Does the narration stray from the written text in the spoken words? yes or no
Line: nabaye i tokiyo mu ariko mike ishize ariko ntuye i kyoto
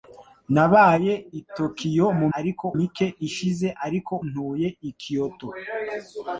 no